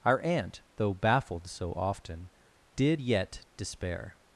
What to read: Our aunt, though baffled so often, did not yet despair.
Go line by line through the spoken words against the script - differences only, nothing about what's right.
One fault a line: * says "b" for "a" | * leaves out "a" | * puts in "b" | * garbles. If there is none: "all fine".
* leaves out "not"